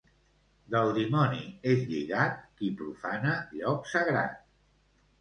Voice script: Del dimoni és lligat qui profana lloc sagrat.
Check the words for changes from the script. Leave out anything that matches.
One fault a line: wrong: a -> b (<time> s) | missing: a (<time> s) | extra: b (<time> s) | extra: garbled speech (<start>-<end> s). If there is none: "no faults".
no faults